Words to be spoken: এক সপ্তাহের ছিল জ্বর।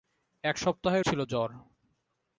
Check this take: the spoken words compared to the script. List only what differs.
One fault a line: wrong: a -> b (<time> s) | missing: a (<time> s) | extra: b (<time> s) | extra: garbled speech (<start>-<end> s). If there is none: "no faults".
no faults